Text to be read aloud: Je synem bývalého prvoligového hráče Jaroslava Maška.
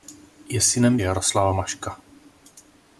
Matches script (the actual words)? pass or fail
fail